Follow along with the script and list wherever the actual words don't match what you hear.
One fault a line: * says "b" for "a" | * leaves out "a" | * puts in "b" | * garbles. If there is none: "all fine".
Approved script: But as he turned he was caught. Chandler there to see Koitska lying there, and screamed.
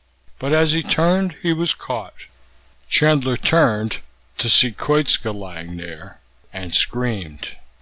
* says "turned" for "there"